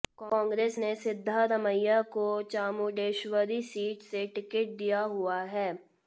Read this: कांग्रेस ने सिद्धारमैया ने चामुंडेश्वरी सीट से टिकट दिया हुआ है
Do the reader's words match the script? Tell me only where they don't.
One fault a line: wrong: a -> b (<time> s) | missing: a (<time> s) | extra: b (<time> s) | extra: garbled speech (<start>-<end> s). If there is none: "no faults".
wrong: ने -> को (2.1 s)